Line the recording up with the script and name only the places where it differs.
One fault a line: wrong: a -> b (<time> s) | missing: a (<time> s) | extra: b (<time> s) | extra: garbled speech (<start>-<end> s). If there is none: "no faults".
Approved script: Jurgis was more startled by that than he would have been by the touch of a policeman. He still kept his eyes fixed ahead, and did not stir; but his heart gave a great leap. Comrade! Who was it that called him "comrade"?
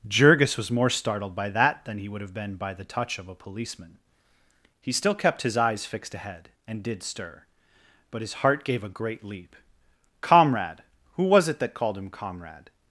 missing: not (7.0 s)